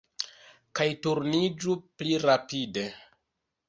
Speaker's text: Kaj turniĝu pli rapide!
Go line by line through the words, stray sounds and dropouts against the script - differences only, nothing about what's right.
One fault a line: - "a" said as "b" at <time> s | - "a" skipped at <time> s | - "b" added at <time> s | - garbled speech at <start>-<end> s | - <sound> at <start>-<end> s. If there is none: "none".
none